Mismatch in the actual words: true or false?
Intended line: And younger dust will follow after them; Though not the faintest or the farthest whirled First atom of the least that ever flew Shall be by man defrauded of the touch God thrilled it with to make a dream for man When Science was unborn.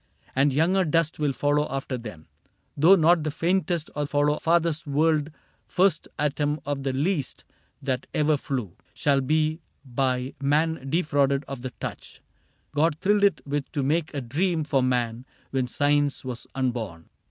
true